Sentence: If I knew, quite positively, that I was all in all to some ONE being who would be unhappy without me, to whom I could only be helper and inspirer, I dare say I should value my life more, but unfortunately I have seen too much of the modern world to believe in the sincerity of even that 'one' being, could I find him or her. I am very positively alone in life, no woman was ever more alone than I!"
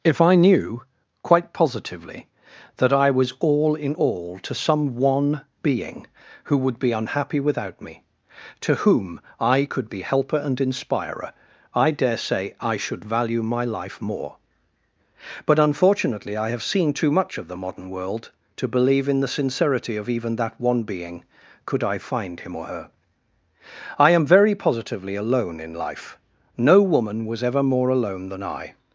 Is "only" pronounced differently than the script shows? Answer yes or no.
yes